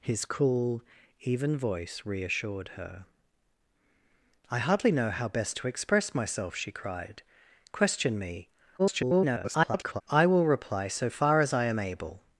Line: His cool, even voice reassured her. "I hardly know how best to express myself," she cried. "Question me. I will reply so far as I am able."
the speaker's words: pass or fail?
fail